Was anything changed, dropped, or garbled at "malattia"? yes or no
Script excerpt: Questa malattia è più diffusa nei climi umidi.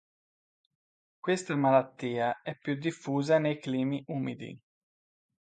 no